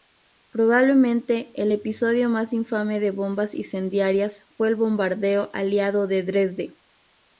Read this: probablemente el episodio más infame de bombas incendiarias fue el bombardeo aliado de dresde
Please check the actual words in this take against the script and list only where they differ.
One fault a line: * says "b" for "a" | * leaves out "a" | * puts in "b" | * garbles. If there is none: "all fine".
all fine